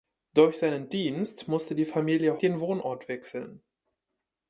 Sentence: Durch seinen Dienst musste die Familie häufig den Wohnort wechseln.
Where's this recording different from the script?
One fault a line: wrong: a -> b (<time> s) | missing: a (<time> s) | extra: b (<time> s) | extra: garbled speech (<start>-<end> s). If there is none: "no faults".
missing: häufig (2.4 s)